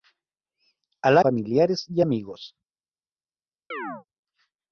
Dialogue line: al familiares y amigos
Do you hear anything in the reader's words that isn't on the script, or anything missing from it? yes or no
no